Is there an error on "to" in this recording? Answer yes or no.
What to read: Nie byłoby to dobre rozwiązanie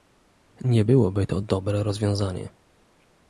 no